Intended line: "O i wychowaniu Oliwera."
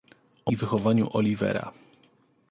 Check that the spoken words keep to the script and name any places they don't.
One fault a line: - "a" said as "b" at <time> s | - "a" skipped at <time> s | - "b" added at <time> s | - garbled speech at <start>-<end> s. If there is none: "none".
none